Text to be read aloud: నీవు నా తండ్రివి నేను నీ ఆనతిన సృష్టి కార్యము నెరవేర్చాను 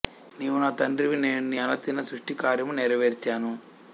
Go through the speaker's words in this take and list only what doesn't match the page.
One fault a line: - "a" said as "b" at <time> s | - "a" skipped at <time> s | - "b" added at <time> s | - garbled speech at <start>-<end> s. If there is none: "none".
none